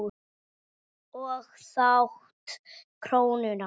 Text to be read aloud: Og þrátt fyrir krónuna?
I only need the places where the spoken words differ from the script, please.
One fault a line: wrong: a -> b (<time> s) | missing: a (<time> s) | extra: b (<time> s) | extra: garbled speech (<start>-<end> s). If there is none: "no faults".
missing: fyrir (2.6 s)